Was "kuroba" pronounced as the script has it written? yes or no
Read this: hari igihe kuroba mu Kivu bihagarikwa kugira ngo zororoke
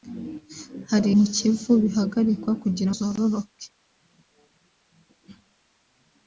no